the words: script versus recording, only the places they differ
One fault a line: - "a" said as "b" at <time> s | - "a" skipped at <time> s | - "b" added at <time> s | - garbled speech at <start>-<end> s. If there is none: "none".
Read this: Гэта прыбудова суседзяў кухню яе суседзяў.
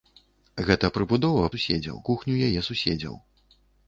none